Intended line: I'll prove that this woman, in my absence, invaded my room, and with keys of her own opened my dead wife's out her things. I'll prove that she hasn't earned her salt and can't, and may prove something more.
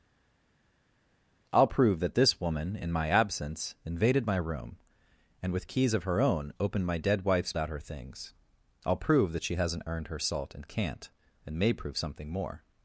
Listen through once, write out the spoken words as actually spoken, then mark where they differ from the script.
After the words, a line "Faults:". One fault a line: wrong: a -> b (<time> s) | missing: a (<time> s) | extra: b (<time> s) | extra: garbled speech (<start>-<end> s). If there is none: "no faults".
I'll prove that this woman, in my absence, invaded my room, and with keys of her own opened my dead wife's out her things. I'll prove that she hasn't earned her salt and can't, and may prove something more.
Faults:
no faults